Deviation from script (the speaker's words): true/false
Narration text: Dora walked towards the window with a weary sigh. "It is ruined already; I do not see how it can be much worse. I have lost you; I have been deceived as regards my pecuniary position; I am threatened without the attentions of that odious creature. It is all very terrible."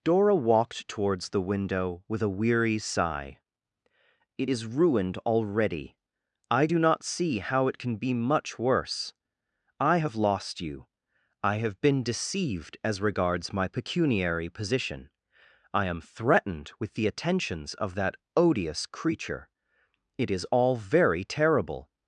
true